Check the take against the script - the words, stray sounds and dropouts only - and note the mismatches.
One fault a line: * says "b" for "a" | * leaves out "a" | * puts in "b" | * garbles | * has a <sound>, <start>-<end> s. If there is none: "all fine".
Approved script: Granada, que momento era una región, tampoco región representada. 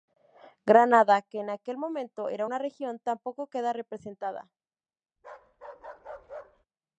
* puts in "en aquel"
* says "queda" for "región"
* has a bark, 5.2-6.7 s